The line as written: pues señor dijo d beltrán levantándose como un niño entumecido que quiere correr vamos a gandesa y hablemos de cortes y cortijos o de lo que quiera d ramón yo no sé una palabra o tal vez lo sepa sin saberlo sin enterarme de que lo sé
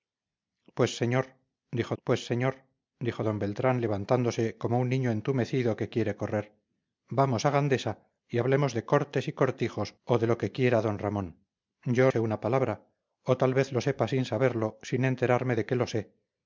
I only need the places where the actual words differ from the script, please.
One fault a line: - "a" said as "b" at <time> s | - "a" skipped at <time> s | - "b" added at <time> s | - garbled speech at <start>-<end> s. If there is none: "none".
- "pues señor dijo" added at 2.0 s
- "no" skipped at 12.1 s